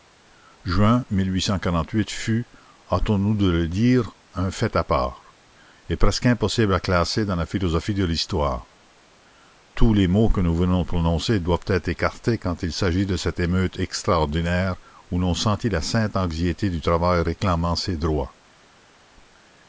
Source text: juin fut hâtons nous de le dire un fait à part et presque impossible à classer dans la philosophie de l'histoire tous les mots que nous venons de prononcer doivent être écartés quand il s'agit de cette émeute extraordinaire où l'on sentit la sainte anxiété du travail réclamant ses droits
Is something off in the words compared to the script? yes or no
no